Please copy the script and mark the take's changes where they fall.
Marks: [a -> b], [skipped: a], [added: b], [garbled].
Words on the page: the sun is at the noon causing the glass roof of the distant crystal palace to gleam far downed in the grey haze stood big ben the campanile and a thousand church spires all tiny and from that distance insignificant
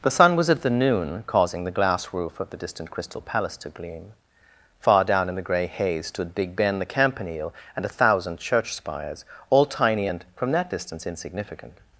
the sun [is -> was] at the noon causing the glass roof of the distant crystal palace to gleam far [downed -> down] in the grey haze stood big ben the campanile and a thousand church spires all tiny and from that distance insignificant